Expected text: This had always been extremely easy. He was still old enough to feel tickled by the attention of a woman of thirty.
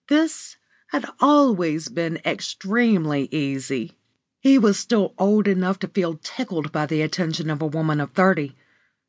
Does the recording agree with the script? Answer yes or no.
yes